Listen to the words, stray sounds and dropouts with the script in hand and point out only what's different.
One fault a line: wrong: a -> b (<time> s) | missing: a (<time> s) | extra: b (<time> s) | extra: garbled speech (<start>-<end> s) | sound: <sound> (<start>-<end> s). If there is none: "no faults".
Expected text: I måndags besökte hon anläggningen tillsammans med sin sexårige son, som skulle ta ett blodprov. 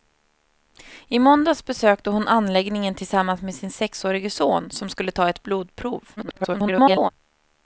extra: garbled speech (6.2-7.1 s)